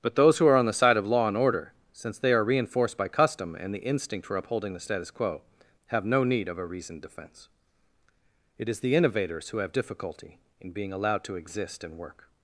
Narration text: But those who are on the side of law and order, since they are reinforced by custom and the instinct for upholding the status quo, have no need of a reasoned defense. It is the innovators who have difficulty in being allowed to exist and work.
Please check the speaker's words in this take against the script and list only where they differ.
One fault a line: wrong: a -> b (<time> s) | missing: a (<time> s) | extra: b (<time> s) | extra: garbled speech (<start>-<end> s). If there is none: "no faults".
no faults